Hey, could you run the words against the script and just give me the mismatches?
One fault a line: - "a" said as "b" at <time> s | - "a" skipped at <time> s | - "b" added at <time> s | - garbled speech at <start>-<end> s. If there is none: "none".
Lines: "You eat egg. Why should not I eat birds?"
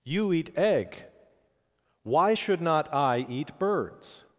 none